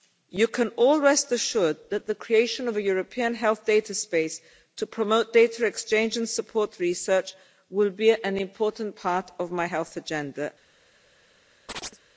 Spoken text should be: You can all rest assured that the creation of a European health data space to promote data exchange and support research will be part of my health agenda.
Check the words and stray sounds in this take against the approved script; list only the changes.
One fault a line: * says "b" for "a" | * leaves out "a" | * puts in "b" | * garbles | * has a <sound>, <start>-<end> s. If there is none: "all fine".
* puts in "an important"
* has a chirp, 11.7-12.0 s